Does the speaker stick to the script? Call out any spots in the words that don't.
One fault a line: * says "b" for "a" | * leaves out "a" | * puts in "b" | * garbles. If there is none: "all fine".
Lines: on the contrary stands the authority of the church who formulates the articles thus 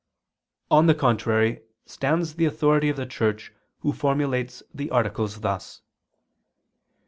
all fine